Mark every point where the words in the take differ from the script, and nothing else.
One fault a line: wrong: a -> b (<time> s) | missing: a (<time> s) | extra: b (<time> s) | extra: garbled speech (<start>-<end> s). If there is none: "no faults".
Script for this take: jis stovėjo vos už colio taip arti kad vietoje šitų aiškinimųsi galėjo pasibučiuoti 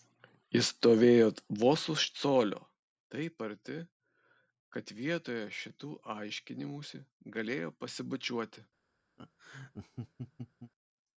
no faults